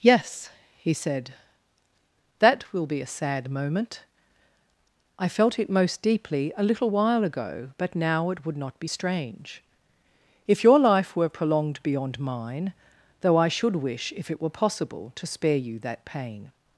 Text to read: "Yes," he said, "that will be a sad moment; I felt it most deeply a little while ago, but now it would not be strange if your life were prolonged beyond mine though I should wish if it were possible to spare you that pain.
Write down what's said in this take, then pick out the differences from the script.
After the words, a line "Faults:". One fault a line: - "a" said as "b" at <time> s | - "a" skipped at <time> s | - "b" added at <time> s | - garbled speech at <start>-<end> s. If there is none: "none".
"Yes," he said, "that will be a sad moment; I felt it most deeply a little while ago, but now it would not be strange if your life were prolonged beyond mine though I should wish if it were possible to spare you that pain.
Faults:
none